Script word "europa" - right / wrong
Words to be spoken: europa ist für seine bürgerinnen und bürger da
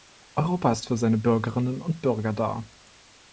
right